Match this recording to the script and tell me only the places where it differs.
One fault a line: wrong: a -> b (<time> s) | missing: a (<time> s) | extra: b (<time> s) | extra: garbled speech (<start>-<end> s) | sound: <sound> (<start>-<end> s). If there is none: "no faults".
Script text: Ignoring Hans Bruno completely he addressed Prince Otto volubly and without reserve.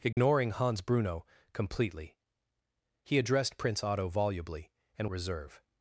sound: dropout (0.1-0.2 s)
missing: without (5.1 s)